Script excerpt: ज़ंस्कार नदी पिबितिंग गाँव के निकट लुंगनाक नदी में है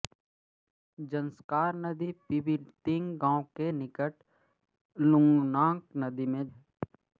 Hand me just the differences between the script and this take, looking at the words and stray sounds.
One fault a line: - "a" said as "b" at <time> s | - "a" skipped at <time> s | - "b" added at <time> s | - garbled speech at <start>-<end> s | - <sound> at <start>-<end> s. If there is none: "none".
none